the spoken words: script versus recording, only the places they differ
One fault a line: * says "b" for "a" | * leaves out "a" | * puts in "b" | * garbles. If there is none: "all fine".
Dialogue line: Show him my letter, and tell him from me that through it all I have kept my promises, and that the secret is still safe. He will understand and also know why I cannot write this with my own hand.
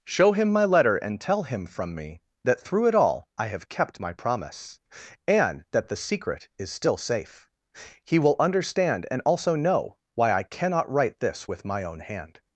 * says "promise" for "promises"